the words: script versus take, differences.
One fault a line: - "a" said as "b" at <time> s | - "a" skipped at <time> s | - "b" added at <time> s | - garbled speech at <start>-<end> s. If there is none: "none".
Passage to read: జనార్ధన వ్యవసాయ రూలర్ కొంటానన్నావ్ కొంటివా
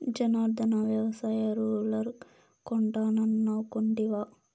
none